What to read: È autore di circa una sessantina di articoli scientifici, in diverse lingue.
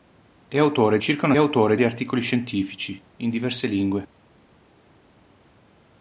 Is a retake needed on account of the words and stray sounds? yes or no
yes